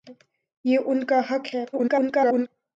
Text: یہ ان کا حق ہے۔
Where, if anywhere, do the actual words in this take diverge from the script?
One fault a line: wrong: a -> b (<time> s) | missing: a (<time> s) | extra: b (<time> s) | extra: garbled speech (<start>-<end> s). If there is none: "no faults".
extra: garbled speech (1.7-2.5 s)